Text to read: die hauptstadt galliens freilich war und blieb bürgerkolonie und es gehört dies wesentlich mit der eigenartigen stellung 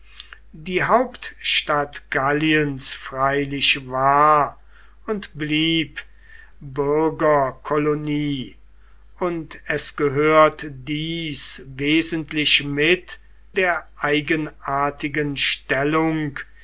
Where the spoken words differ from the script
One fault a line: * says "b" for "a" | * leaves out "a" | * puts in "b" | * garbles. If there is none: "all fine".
all fine